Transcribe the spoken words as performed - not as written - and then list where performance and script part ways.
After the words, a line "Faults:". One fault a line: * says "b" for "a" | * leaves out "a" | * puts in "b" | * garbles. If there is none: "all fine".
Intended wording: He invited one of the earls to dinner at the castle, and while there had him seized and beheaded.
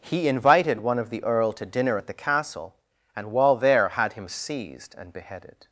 He invited one of the earl to dinner at the castle, and while there had him seized and beheaded.
Faults:
* says "earl" for "earls"